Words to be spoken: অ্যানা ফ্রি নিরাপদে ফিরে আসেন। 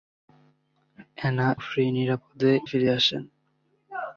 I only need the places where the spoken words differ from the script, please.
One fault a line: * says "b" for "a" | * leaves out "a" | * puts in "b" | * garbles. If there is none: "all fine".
all fine